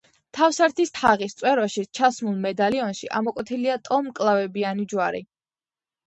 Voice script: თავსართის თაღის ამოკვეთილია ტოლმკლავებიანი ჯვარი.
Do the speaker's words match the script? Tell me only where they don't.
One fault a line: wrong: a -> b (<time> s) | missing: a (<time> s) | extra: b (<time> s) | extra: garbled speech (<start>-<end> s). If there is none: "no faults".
extra: წვეროში ჩასმულ მედალიონში (1.4 s)